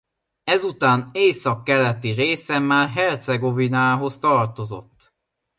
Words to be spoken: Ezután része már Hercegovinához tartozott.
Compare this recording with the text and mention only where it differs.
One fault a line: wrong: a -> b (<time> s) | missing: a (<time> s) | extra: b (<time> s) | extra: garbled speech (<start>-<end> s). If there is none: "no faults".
extra: északkeleti (1.1 s)